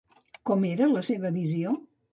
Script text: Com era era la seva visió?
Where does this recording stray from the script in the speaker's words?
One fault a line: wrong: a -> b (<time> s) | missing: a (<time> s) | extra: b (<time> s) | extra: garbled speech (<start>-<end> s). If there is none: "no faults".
missing: era (0.9 s)